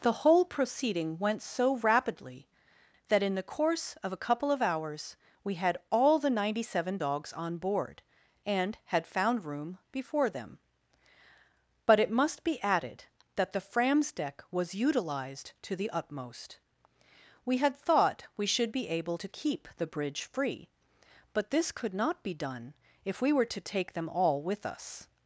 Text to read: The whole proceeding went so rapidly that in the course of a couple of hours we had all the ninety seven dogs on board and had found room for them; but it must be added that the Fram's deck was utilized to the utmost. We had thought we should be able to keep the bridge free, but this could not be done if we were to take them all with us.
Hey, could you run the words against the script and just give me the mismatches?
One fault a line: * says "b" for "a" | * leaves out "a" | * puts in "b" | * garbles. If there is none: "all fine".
* says "before" for "for"